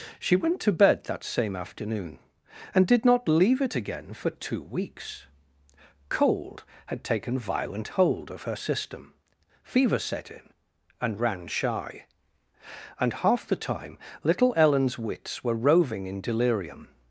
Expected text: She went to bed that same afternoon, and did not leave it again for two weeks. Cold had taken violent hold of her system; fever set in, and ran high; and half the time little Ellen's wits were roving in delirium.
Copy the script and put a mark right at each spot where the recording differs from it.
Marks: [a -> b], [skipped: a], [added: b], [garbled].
She went to bed that same afternoon, and did not leave it again for two weeks. Cold had taken violent hold of her system; fever set in, and ran [high; -> shy] and half the time little Ellen's wits were roving in delirium.